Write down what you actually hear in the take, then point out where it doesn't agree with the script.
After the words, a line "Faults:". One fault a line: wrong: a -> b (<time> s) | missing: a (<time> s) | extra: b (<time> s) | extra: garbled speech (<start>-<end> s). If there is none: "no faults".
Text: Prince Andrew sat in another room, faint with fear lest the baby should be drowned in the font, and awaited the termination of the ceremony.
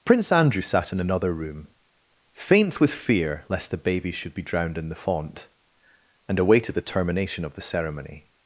Prince Andrew sat in another room, faint with fear lest the baby should be drowned in the font, and awaited the termination of the ceremony.
Faults:
no faults